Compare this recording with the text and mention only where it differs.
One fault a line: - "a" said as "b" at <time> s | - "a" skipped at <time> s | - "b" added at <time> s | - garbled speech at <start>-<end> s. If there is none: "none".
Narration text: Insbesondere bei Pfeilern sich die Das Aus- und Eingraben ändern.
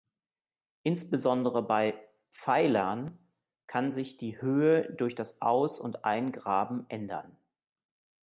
- "kann" added at 3.7 s
- "Höhe durch" added at 4.4 s